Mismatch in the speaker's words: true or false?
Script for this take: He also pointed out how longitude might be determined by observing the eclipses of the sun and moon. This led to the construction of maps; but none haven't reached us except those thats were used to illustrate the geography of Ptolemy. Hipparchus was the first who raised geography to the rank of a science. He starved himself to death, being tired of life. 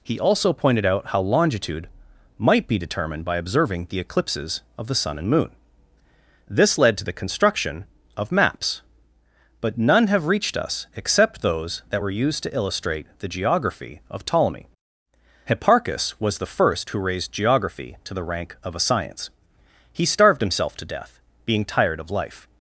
true